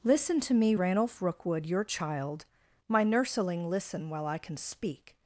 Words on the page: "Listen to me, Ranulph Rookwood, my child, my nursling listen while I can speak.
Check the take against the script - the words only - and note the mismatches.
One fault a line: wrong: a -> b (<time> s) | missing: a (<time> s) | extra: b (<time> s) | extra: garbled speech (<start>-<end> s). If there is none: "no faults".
wrong: my -> your (1.6 s)